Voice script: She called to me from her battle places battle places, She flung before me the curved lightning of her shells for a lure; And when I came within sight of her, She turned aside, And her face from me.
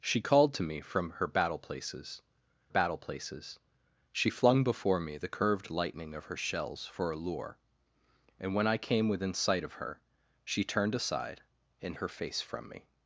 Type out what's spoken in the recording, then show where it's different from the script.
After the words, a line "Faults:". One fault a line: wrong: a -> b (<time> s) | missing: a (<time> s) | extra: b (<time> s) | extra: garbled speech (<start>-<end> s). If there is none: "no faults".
She called to me from her battle places battle places, She flung before me the curved lightning of her shells for a lure; And when I came within sight of her, She turned aside, And her face from me.
Faults:
no faults